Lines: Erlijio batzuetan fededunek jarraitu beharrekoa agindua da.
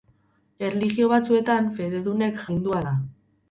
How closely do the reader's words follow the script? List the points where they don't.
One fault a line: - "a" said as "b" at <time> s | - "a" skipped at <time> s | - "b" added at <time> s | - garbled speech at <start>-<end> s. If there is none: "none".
- "jarraitu beharrekoa" skipped at 2.4 s